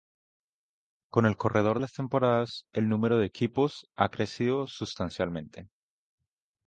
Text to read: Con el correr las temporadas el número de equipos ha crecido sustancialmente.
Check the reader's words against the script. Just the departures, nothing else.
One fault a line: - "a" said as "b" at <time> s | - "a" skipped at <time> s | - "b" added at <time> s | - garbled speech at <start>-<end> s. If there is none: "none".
none